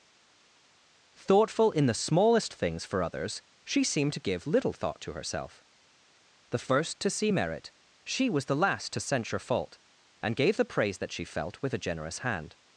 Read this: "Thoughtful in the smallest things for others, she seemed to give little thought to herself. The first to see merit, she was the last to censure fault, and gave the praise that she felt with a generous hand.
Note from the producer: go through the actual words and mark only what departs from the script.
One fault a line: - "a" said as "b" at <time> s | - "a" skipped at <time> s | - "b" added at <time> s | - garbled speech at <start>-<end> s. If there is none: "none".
none